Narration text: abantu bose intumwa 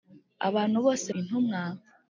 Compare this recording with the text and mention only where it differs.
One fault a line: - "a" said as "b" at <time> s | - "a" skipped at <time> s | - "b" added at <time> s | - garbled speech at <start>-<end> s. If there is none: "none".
none